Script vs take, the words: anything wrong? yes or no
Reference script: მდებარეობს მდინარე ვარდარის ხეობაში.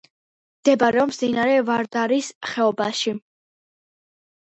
no